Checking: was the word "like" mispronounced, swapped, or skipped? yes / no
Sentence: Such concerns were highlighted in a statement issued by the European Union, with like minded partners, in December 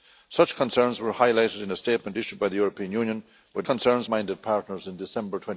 yes